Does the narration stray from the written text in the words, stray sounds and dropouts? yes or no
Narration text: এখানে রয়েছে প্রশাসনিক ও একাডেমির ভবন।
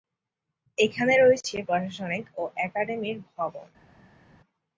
no